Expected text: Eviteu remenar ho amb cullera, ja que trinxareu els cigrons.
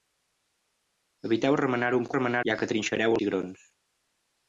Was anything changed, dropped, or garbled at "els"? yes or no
yes